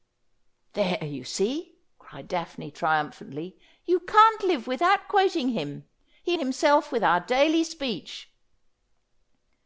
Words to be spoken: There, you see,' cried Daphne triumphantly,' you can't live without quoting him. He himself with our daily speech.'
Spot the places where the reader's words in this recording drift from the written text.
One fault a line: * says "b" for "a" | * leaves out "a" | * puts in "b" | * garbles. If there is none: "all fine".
all fine